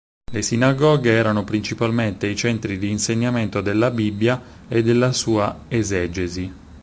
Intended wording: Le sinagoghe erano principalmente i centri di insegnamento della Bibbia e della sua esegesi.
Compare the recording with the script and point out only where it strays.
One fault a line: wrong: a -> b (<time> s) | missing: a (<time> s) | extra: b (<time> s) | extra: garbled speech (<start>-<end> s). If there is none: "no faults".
no faults